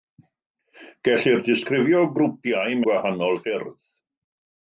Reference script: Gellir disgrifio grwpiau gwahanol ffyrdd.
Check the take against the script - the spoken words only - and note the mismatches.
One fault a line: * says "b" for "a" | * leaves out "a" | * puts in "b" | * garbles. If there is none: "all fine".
all fine